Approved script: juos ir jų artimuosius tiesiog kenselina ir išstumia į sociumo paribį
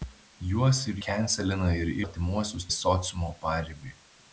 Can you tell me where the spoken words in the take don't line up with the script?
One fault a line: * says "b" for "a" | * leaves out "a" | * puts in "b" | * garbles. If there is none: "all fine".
* leaves out "jų artimuosius tiesiog"
* says "artimuosius" for "išstumia"